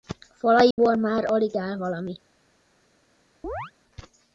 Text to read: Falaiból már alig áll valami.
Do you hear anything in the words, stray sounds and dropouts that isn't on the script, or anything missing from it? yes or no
yes